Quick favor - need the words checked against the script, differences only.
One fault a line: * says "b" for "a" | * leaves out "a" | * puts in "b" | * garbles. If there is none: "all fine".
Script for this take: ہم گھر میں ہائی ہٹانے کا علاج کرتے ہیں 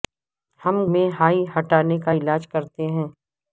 * leaves out "گھر"